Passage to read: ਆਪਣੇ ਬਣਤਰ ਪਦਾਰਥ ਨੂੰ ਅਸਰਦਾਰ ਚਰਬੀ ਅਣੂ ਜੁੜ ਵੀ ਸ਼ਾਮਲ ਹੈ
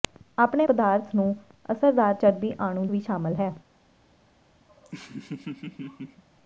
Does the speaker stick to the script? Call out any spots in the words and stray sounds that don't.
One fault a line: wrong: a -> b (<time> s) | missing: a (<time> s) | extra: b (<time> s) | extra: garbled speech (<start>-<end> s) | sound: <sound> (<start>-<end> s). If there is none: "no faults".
missing: ਬਣਤਰ (0.7 s)
missing: ਜੁੜ (2.9 s)
sound: laugh (4.7-6.2 s)